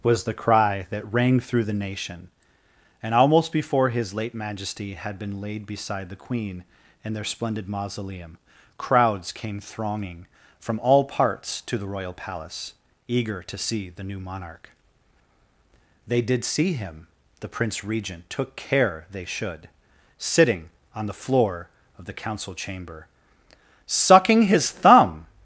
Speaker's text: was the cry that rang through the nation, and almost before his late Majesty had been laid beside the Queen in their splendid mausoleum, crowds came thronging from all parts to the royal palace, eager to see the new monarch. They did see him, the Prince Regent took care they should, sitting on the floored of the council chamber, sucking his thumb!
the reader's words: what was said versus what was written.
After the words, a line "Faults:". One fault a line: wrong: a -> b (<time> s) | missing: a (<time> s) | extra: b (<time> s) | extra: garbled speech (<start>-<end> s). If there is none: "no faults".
was the cry that rang through the nation, and almost before his late Majesty had been laid beside the Queen in their splendid mausoleum, crowds came thronging from all parts to the royal palace, eager to see the new monarch. They did see him, the Prince Regent took care they should, sitting on the floor of the council chamber, sucking his thumb!
Faults:
wrong: floored -> floor (21.1 s)